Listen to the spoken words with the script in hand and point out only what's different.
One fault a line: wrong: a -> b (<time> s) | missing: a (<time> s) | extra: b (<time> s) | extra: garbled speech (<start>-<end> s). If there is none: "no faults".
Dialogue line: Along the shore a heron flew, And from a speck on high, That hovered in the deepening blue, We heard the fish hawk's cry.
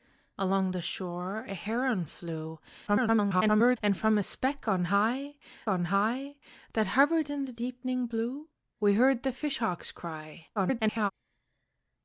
extra: garbled speech (2.9-3.8 s)
extra: on high (5.7 s)
extra: garbled speech (10.6-11.1 s)